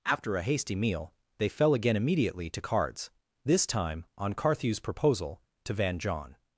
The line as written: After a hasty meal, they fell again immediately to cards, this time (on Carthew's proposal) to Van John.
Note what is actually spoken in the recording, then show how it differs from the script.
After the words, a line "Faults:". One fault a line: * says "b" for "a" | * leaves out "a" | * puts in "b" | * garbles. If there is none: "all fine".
After a hasty meal, they fell again immediately to cards, this time (on Carthew's proposal) to Van John.
Faults:
all fine